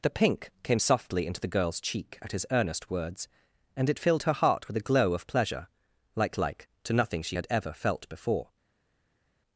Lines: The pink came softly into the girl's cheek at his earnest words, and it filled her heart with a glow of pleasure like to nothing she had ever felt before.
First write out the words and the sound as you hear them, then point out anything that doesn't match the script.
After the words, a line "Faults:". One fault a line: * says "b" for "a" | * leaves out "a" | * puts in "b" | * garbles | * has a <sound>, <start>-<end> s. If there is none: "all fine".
The pink came softly into the girl's cheek at his earnest words, and it filled her heart with a glow of pleasure like like to nothing she had ever felt before.
Faults:
* puts in "like"